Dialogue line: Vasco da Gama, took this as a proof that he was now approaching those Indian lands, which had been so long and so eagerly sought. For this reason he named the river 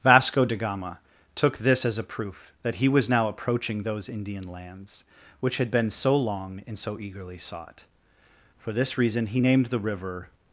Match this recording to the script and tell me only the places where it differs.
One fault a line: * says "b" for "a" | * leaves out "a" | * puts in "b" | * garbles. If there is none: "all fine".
all fine